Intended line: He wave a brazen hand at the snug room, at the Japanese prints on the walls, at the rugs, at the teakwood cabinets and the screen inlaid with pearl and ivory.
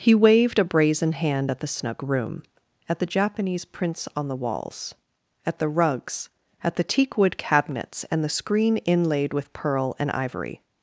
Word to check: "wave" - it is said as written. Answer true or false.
false